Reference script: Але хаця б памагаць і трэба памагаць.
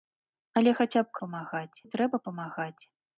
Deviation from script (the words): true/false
false